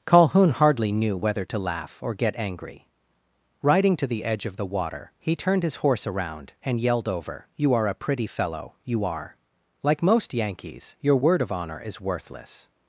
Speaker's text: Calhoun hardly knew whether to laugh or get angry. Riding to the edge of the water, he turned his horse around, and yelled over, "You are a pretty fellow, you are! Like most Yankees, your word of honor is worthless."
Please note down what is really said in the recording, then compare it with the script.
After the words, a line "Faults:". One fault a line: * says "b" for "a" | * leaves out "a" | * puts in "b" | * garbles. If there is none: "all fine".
Calhoun hardly knew whether to laugh or get angry. Riding to the edge of the water, he turned his horse around, and yelled over, "You are a pretty fellow, you are! Like most Yankees, your word of honor is worthless."
Faults:
all fine